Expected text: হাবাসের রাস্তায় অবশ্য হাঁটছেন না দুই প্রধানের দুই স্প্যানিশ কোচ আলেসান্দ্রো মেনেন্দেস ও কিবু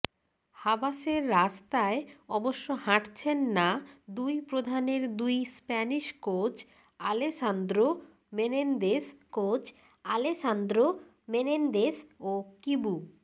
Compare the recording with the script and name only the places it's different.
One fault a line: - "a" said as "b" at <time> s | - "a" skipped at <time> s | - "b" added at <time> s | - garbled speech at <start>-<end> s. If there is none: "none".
- "কোচ আলেসান্দ্রো মেনেন্দেস" added at 9.3 s